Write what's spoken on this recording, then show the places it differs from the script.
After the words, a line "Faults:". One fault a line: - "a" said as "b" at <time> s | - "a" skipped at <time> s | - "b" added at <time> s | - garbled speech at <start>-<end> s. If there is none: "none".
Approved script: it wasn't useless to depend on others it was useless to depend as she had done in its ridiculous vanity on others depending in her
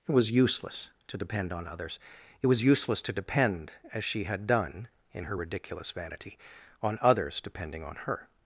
it was useless to depend on others it was useless to depend as she had done in her ridiculous vanity on others depending on her
Faults:
- "wasn't" said as "was" at 0.1 s
- "its" said as "her" at 5.2 s
- "in" said as "on" at 7.8 s